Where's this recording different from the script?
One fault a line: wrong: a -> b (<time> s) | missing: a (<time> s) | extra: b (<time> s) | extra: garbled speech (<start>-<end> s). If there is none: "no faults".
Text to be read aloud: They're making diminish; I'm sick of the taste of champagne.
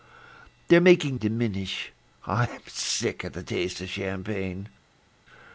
no faults